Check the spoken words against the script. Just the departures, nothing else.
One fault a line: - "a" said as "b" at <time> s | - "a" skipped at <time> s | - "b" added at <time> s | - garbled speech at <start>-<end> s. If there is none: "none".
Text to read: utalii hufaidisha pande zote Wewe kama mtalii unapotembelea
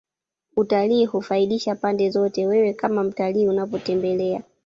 none